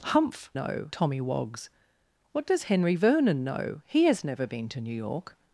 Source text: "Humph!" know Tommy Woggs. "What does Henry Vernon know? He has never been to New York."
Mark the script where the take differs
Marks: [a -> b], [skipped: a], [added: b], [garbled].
"Humph!" know Tommy Woggs. "What does Henry Vernon know? He has never been to New York."